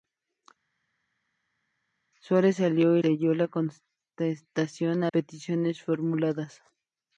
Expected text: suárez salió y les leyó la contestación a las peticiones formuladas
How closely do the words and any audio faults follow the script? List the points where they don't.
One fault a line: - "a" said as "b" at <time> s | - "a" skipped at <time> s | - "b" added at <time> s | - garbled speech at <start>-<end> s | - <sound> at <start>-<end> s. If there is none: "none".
- "les" skipped at 3.0 s
- "las" skipped at 5.1 s